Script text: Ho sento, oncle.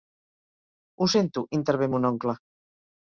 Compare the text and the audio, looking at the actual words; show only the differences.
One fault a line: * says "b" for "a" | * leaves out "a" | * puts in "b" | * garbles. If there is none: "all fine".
* puts in "intervé mon"